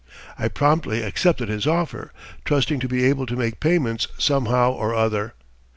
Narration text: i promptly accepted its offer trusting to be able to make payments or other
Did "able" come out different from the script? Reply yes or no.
no